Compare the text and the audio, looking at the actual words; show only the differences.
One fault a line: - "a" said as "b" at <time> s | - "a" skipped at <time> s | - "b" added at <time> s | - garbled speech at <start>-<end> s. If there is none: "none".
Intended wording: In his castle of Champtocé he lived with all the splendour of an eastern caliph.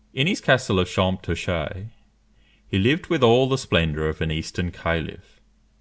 none